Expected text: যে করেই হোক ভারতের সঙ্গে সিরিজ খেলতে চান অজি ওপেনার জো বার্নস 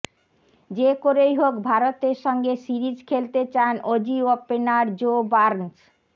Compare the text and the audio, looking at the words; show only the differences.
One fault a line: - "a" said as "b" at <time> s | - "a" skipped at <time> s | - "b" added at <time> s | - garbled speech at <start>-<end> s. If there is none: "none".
none